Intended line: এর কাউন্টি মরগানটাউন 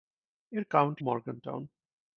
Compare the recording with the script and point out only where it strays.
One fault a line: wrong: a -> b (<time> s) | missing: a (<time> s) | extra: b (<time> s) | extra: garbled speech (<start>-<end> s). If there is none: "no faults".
no faults